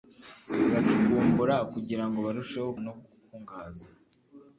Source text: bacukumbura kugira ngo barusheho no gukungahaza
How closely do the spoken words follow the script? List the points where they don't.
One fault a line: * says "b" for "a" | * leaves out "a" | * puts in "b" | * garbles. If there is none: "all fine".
all fine